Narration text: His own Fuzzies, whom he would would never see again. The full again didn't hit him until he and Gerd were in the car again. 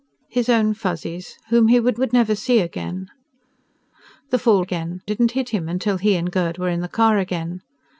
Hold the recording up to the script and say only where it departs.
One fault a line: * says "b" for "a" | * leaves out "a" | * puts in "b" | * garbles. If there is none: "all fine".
all fine